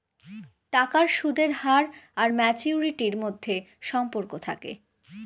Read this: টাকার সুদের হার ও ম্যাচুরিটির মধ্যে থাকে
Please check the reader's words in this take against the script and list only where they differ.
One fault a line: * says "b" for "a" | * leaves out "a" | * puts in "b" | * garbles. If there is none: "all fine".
* says "আর" for "ও"
* puts in "সম্পর্ক"